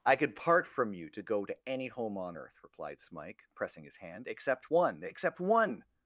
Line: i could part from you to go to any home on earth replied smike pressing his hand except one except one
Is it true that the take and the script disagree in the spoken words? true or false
false